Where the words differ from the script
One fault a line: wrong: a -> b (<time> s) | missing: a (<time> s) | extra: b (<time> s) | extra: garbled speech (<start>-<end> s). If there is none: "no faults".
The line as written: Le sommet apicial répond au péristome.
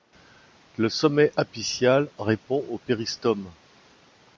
no faults